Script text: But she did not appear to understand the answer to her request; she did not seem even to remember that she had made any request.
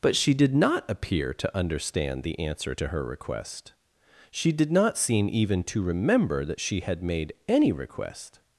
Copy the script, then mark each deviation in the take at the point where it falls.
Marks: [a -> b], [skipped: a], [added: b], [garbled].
But she did not appear to understand the answer to her request; she did not seem even to remember that she had made any request.